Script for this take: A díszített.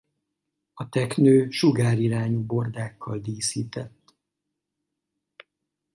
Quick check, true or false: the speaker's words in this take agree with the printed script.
false